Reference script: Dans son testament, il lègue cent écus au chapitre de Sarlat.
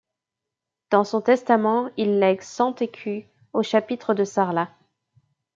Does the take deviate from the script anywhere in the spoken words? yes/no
no